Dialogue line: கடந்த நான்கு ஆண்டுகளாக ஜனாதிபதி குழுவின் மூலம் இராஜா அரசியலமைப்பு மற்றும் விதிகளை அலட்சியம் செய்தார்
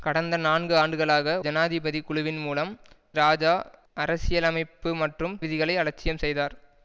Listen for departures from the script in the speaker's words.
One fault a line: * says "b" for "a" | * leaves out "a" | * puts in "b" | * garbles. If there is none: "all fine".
all fine